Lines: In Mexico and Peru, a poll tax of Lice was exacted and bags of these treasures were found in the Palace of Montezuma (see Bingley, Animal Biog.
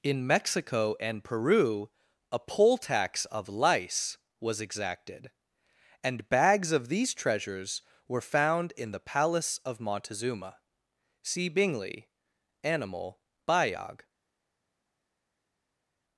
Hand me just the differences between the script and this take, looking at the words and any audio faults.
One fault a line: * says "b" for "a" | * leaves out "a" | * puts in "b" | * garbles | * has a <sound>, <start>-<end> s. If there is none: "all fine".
all fine